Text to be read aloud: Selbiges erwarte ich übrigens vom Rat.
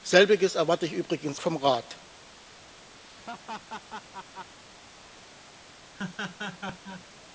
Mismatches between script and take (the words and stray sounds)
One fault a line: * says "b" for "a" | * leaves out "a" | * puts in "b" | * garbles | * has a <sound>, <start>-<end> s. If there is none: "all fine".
* has a laugh, 3.0-4.6 s
* has a laugh, 5.9-7.0 s